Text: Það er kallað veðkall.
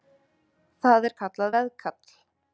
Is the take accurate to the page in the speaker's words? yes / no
yes